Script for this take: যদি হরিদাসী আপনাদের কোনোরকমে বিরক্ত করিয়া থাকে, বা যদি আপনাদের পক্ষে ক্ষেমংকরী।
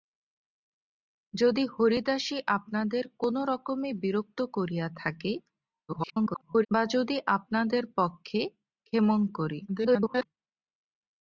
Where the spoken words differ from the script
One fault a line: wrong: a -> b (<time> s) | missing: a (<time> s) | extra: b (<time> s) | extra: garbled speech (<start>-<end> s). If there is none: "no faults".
extra: garbled speech (5.9-6.7 s)
extra: garbled speech (9.7-10.3 s)